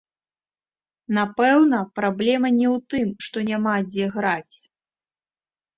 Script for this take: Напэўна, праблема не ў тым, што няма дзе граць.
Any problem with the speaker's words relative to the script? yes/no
no